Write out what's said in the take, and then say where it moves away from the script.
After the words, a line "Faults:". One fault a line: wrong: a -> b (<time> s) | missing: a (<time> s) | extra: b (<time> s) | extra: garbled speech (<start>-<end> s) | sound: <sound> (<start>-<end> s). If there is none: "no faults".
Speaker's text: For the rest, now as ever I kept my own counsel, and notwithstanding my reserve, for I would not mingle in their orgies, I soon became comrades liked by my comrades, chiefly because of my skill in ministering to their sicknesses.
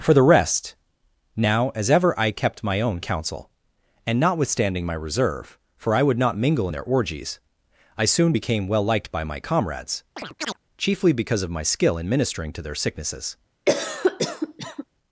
For the rest, now as ever I kept my own counsel, and notwithstanding my reserve, for I would not mingle in their orgies, I soon became well liked by my comrades, chiefly because of my skill in ministering to their sicknesses.
Faults:
wrong: comrades -> well (8.7 s)
sound: chirp (10.2-10.6 s)
sound: cough (13.7-14.8 s)